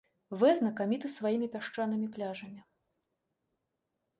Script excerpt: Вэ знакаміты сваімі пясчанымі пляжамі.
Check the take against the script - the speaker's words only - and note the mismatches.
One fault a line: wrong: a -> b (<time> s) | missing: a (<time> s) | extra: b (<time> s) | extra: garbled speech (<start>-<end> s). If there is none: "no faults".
no faults